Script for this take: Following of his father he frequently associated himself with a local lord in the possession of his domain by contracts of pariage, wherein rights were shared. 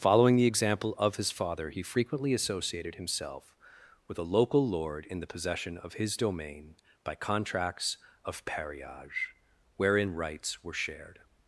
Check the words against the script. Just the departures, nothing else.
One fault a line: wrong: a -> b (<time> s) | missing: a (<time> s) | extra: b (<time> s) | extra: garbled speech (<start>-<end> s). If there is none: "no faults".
extra: the example (0.3 s)